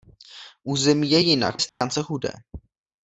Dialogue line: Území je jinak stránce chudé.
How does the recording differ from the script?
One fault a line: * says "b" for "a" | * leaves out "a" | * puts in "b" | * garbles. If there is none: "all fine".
all fine